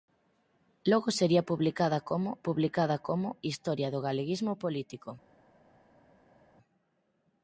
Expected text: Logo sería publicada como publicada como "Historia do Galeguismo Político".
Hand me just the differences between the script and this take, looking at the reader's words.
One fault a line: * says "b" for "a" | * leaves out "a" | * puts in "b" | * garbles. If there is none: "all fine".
all fine